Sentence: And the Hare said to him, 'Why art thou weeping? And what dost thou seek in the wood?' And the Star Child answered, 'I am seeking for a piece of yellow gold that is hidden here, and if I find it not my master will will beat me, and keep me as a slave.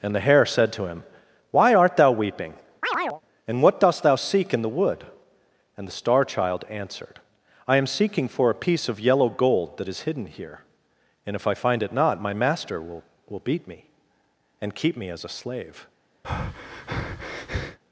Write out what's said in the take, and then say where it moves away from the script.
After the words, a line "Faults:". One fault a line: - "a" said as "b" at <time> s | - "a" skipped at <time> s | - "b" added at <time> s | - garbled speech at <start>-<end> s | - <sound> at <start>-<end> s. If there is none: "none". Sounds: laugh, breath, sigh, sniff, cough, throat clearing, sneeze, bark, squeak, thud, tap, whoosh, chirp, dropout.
And the Hare said to him, 'Why art thou weeping? And what dost thou seek in the wood?' And the Star Child answered, 'I am seeking for a piece of yellow gold that is hidden here, and if I find it not my master will will beat me, and keep me as a slave.
Faults:
- chirp at 2.8-3.2 s
- breath at 16.2-17.8 s